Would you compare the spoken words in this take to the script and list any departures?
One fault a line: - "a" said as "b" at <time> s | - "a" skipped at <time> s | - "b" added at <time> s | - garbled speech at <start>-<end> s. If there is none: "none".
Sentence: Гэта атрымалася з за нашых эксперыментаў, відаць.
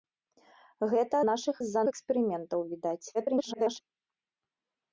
- "атрымалася" said as "нашых" at 1.3 s
- "нашых" skipped at 1.8 s
- garbled speech at 3.1-3.8 s